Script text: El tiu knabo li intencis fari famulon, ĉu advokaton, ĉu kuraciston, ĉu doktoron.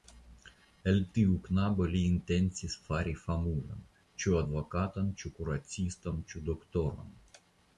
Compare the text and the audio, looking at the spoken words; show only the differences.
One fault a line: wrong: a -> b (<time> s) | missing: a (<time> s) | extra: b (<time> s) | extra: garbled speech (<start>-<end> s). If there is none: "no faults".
no faults